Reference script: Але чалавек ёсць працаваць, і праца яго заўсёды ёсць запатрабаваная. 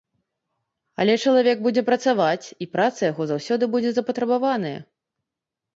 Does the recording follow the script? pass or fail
fail